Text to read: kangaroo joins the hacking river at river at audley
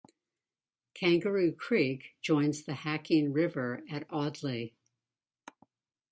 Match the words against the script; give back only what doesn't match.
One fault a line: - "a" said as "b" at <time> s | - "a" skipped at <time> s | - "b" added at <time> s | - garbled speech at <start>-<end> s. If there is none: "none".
- "creek" added at 1.6 s
- "river at" skipped at 4.1 s